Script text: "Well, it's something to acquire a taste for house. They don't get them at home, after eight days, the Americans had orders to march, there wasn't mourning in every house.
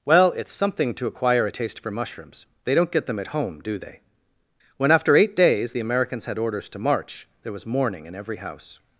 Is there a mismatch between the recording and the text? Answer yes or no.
yes